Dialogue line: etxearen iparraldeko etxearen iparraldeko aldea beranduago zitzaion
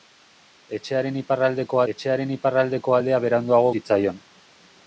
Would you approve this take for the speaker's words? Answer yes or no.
yes